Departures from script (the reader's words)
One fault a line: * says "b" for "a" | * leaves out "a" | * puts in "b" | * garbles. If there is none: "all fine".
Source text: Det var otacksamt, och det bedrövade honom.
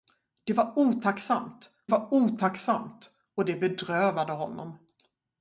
* puts in "var otacksamt"